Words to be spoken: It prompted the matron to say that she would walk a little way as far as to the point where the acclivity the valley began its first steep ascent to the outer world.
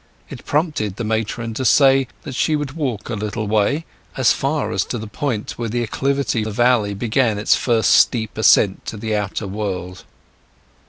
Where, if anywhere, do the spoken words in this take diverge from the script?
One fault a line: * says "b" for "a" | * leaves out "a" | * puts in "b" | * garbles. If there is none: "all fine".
all fine